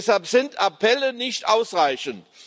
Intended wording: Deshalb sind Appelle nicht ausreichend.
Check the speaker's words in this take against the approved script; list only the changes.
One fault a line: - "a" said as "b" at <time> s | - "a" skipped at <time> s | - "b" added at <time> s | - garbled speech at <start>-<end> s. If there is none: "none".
none